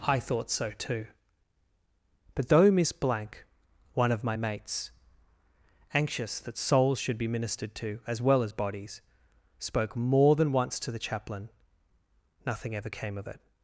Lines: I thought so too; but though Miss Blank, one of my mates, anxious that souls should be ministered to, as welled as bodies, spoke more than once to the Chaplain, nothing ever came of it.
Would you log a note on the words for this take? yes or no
yes